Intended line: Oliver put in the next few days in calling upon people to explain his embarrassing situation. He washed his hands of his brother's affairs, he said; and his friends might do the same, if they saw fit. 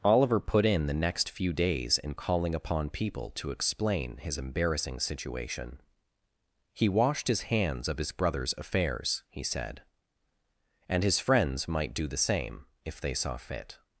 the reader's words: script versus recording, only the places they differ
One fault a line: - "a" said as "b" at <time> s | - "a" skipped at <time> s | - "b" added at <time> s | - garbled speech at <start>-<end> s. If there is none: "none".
none